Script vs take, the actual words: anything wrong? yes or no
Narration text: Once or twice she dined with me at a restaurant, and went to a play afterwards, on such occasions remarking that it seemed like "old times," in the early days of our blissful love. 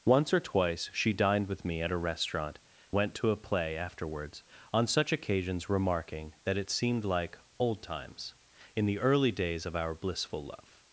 yes